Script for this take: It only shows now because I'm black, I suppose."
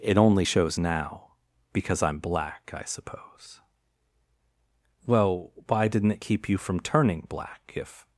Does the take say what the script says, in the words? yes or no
no